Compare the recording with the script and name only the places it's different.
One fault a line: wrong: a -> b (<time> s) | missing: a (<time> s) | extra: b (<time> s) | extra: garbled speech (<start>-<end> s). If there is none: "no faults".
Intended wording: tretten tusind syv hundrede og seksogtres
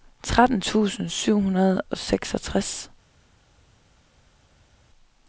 no faults